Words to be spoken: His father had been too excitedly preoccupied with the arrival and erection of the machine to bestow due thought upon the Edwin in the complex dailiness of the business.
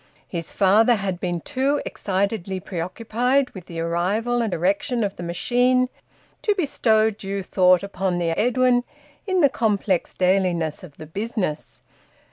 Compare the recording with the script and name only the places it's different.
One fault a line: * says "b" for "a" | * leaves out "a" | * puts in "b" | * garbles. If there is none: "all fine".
all fine